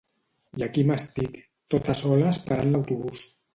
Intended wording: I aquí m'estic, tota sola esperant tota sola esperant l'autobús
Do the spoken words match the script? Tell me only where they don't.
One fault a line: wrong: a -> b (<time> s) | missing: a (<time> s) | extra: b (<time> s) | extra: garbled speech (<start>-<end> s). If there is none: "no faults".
missing: tota sola esperant (2.8 s)